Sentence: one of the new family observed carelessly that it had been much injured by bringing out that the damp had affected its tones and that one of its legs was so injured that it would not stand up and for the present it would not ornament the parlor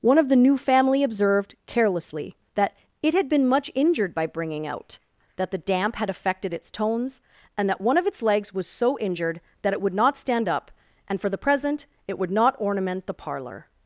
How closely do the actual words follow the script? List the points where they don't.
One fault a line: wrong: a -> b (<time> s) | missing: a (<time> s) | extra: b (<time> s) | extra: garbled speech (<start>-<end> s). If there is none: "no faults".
no faults